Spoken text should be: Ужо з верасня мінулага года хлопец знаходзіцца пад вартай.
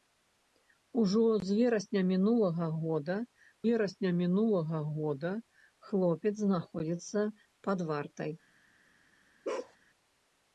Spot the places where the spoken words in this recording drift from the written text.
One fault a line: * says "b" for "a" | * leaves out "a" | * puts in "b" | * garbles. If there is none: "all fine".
* puts in "верасня мінулага года"